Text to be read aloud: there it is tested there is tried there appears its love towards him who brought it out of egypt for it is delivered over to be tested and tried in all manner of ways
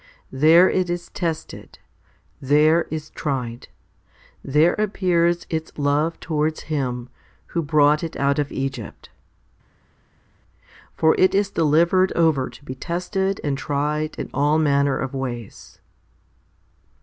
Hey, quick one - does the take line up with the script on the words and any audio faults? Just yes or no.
yes